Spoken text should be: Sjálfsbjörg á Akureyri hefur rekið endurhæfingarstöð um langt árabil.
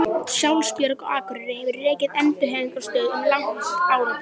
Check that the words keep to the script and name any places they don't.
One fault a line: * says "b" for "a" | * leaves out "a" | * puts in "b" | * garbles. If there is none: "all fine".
all fine